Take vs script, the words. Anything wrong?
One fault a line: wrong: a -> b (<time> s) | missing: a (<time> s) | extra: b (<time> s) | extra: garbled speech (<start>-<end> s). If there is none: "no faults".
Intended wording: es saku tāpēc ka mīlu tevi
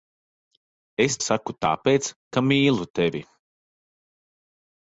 no faults